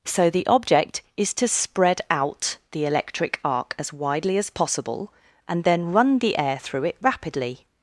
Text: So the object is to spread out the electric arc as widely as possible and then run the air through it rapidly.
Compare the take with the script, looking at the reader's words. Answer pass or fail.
pass